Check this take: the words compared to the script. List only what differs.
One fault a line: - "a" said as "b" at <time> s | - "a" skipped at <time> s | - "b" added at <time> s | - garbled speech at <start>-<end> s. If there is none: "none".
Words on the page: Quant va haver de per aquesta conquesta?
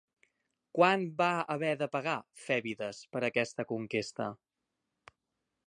- "pagar Fèbides" added at 1.9 s